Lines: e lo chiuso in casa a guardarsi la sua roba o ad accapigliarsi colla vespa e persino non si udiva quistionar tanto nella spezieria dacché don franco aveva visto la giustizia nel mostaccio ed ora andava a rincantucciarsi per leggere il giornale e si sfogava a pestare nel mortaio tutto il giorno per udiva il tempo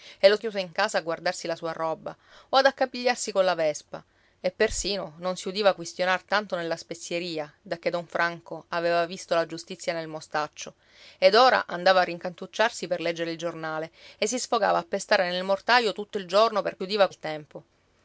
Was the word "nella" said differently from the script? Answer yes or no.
no